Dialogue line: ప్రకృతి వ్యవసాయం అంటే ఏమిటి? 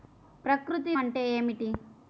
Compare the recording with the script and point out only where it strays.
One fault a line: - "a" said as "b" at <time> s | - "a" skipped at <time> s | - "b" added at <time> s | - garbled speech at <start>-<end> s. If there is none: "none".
- "వ్యవసాయం" skipped at 0.9 s